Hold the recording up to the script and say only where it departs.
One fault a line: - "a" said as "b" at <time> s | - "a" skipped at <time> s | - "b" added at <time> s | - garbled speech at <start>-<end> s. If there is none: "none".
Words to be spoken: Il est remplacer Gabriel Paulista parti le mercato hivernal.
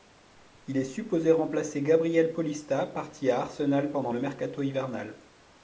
- "supposé" added at 0.8 s
- "à Arsenal pendant" added at 3.3 s